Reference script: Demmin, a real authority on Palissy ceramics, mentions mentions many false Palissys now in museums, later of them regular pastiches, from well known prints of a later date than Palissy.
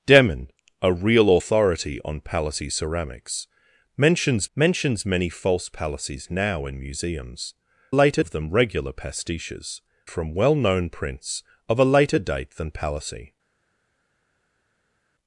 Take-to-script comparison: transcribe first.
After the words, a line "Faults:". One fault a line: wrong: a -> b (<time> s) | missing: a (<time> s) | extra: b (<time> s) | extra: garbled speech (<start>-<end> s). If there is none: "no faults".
Demmin, a real authority on Palissy ceramics, mentions mentions many false Palissys now in museums, later of them regular pastiches, from well known prints of a later date than Palissy.
Faults:
no faults